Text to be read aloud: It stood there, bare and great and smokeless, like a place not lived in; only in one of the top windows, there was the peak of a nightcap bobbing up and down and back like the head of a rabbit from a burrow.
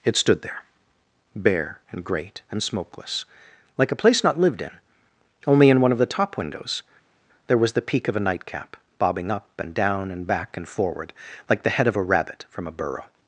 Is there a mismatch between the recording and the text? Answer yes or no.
yes